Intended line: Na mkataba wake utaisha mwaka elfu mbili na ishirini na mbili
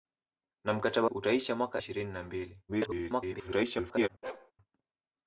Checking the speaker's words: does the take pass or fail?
fail